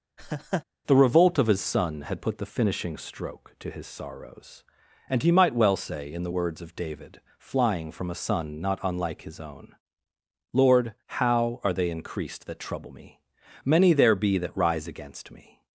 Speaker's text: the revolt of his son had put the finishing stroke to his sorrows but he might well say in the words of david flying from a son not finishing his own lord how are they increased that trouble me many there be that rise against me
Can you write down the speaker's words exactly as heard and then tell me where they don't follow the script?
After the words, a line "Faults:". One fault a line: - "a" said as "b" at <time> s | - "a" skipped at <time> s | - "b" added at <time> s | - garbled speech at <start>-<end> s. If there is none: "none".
the revolt of his son had put the finishing stroke to his sorrows and he might well say in the words of david flying from a son not unlike his own lord how are they increased that trouble me many there be that rise against me
Faults:
- "but" said as "and" at 5.1 s
- "finishing" said as "unlike" at 8.8 s